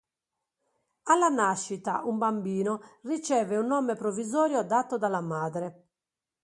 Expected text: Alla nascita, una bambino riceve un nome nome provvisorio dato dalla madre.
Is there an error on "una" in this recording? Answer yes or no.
yes